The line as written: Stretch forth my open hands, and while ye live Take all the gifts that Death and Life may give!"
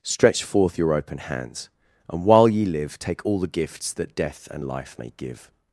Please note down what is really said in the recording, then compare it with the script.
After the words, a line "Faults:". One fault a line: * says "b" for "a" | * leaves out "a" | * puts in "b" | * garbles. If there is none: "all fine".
Stretch forth your open hands, and while ye live Take all the gifts that Death and Life may give!"
Faults:
* says "your" for "my"